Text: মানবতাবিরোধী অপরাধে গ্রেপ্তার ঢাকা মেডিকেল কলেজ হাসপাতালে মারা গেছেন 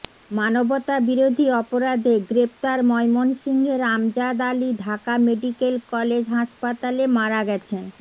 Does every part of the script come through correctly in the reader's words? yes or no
no